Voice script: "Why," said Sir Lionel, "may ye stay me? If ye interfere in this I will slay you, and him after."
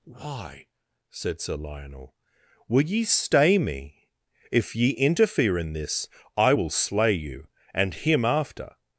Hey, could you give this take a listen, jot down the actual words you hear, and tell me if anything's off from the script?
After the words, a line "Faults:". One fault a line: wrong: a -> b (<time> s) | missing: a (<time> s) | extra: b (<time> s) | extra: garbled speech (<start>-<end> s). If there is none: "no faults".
"Why," said Sir Lionel, "will ye stay me? If ye interfere in this I will slay you, and him after."
Faults:
wrong: may -> will (2.7 s)